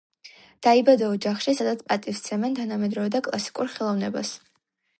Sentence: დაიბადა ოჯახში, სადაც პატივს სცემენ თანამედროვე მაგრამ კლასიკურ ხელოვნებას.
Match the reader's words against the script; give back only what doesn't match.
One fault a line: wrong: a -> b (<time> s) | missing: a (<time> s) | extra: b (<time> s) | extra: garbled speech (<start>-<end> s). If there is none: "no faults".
wrong: მაგრამ -> და (3.2 s)